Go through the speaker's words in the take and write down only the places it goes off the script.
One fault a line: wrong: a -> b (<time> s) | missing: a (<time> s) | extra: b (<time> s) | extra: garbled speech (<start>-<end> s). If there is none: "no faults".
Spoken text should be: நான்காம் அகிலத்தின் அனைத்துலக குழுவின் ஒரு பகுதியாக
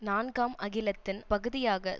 missing: அனைத்துலக குழுவின் ஒரு (1.2 s)